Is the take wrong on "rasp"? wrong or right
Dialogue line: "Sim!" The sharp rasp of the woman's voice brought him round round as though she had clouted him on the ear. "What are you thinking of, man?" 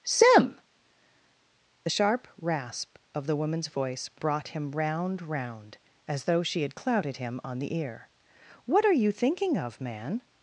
right